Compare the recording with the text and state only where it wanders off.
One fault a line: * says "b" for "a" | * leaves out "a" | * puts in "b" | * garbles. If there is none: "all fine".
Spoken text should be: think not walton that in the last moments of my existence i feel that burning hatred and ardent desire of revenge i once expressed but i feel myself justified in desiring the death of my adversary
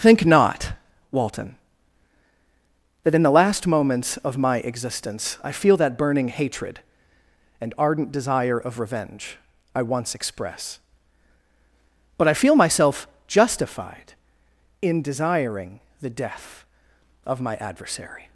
* says "express" for "expressed"